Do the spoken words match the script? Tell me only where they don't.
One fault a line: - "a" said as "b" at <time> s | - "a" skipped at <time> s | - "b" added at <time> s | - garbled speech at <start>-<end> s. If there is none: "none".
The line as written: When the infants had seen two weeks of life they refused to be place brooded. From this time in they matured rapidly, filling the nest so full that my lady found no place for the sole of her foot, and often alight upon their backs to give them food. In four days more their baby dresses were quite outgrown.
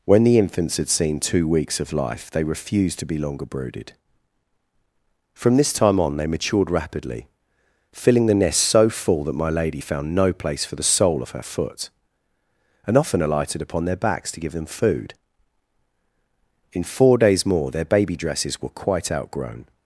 - "place" said as "longer" at 3.2 s
- "in" said as "on" at 6.0 s
- "alight" said as "alighted" at 13.2 s